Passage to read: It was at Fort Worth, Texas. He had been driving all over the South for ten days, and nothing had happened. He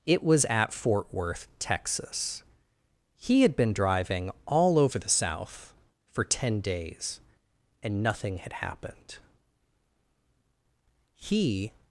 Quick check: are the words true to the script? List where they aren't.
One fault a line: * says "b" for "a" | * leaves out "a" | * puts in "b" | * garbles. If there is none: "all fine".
all fine